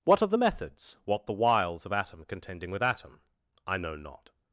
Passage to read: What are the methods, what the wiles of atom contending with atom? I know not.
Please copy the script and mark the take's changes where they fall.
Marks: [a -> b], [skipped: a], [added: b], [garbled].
What are the methods, what the wiles of atom contending with atom? I know not.